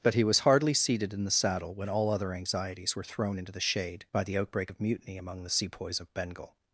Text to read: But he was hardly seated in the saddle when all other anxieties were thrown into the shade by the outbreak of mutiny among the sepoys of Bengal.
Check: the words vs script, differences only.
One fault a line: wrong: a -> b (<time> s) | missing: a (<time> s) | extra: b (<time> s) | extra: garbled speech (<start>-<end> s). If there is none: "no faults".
no faults